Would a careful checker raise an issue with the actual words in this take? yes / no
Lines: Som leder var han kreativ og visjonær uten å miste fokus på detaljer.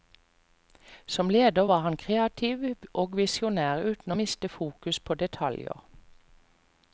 no